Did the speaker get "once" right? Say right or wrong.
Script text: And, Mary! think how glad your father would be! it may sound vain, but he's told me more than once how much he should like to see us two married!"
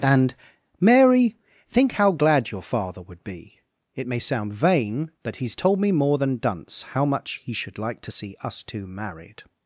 wrong